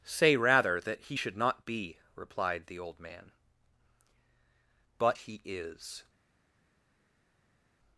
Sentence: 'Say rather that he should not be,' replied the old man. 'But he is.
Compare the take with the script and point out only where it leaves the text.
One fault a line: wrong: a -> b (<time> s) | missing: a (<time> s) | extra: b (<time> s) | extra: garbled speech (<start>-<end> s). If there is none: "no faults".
no faults